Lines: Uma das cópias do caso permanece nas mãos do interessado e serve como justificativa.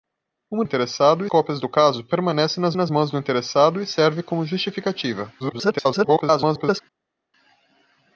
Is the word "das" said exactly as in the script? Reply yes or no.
no